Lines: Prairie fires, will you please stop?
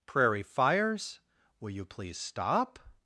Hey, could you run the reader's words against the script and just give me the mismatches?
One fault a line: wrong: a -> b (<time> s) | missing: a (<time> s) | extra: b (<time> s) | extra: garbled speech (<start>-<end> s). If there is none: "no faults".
no faults